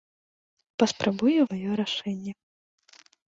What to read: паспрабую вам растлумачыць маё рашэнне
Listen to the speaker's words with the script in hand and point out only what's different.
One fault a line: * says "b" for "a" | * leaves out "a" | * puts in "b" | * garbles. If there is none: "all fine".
* leaves out "вам растлумачыць"